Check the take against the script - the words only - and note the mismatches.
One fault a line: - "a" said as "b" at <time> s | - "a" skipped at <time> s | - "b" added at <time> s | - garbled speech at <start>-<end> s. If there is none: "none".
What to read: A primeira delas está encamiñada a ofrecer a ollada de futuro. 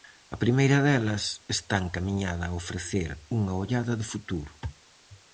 - "a" said as "unha" at 3.4 s